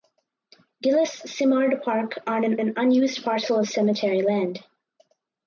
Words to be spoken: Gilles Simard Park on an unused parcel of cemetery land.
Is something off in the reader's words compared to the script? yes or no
yes